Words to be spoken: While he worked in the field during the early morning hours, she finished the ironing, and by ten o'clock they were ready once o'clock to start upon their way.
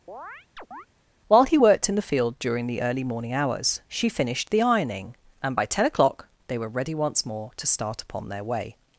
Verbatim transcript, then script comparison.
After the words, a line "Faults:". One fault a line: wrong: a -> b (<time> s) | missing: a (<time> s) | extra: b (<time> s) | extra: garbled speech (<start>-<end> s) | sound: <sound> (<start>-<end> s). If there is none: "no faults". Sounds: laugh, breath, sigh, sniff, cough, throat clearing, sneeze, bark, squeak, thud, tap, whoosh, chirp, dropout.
While he worked in the field during the early morning hours, she finished the ironing, and by ten o'clock they were ready once more to start upon their way.
Faults:
sound: chirp (0.1-0.9 s)
wrong: o'clock -> more (7.3 s)